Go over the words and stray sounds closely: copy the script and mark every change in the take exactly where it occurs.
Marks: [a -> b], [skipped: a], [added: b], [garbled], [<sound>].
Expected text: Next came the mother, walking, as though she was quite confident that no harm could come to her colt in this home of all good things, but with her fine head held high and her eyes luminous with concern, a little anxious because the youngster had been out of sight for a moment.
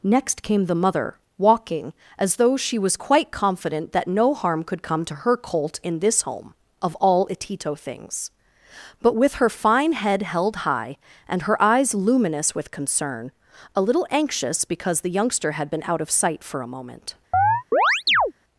Next came the mother, walking, as though she was quite confident that no harm could come to her colt in this home of all [good -> itito] things, but with her fine head held high and her eyes luminous with concern, a little anxious because the youngster had been out of sight for a moment. [chirp]